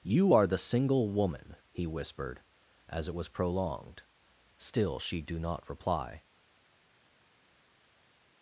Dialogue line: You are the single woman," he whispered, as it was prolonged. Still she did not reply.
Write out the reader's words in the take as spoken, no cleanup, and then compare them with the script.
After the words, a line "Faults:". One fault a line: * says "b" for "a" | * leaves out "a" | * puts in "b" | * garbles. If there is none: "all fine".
You are the single woman," he whispered, as it was prolonged. Still she do not reply.
Faults:
* says "do" for "did"